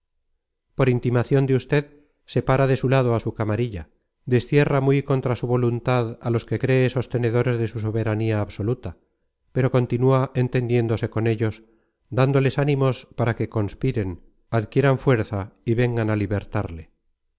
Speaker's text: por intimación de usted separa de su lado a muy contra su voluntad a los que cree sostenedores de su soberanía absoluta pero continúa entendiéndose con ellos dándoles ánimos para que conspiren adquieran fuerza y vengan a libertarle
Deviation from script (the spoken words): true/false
true